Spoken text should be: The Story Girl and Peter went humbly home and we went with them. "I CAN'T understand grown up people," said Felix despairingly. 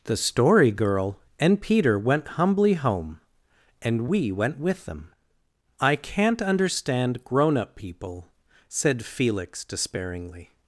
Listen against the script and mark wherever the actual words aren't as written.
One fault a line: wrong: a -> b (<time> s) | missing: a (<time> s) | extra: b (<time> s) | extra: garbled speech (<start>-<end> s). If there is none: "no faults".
no faults